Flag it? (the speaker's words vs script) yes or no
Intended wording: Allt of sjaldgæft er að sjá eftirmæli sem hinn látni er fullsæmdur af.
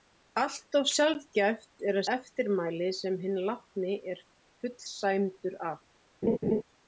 yes